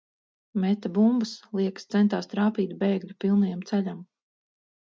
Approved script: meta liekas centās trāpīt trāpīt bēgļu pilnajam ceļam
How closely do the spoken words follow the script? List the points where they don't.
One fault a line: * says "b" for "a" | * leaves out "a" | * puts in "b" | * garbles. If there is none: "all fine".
* puts in "bumbas"
* leaves out "trāpīt"